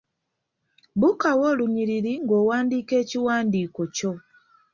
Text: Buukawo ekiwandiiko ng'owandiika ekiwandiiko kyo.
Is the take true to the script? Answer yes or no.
no